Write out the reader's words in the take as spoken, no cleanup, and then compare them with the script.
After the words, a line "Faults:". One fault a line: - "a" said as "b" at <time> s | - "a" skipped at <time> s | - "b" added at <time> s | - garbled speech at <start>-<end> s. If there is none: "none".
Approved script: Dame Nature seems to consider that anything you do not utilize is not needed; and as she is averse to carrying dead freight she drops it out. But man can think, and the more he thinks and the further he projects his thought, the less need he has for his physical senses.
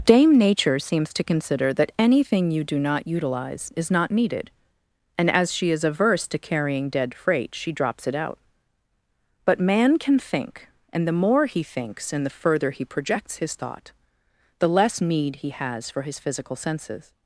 Dame Nature seems to consider that anything you do not utilize is not needed; and as she is averse to carrying dead freight she drops it out. But man can think, and the more he thinks and the further he projects his thought, the less need he has for his physical senses.
Faults:
none